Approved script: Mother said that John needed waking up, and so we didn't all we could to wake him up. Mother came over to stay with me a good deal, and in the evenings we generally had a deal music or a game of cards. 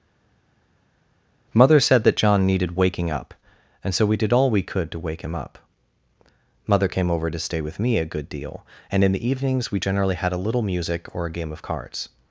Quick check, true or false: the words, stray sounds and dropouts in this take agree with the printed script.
false